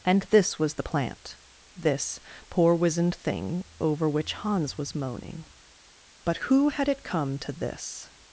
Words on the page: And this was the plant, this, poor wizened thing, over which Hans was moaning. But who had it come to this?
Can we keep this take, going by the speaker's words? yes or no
yes